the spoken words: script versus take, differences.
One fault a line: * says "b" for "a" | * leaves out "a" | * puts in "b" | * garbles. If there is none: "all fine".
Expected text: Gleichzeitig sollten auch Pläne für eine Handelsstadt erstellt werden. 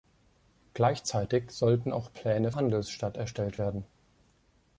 * leaves out "für eine"